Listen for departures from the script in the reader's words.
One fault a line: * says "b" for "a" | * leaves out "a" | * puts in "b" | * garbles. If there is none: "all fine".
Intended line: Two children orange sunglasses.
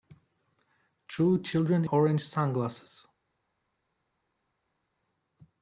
all fine